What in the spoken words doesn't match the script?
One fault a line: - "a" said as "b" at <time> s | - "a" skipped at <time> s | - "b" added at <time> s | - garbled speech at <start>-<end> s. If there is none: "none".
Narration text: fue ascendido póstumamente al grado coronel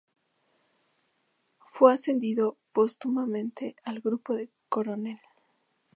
- "de" added at 4.3 s